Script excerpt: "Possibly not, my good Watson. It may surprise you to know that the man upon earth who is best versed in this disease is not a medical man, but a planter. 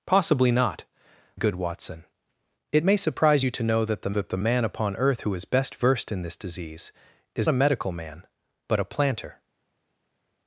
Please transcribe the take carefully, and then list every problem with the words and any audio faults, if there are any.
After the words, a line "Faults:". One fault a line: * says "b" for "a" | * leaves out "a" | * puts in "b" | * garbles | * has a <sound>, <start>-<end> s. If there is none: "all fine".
"Possibly not, good Watson. It may surprise you to know that the that the man upon earth who is best versed in this disease is a medical man, but a planter.
Faults:
* leaves out "my"
* puts in "that the"
* leaves out "not"